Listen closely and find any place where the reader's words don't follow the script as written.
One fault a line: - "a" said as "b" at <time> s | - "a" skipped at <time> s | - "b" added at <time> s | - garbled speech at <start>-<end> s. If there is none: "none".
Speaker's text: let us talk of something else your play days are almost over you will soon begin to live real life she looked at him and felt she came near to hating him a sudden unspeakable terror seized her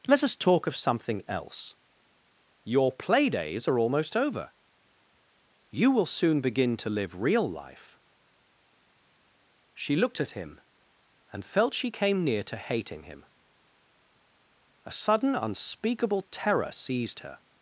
none